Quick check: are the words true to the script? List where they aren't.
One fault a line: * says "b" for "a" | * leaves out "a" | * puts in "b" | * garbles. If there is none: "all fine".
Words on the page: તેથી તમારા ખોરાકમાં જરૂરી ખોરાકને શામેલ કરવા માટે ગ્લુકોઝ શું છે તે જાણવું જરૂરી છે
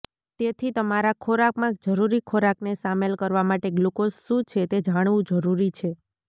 all fine